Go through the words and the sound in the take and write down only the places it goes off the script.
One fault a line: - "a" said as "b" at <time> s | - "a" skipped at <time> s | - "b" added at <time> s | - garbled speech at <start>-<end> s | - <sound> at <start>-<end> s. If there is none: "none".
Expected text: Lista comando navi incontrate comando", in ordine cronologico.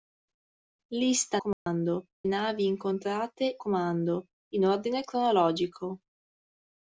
- dropout at 1.5-1.7 s